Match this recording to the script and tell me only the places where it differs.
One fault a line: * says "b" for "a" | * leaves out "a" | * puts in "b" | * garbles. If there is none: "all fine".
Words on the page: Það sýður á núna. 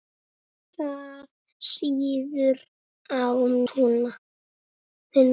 all fine